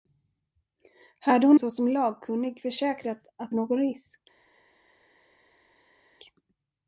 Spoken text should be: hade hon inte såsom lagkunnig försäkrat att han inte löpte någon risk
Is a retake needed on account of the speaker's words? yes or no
yes